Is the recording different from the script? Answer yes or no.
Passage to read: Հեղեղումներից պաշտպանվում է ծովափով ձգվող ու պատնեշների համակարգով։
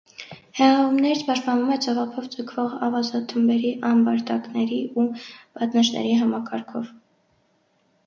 yes